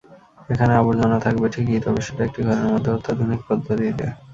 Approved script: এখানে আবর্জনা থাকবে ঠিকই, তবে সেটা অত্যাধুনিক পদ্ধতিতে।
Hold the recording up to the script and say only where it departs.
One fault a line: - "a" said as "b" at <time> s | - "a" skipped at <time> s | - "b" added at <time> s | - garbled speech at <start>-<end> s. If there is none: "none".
- "একটি ঘরের মধ্যে" added at 2.2 s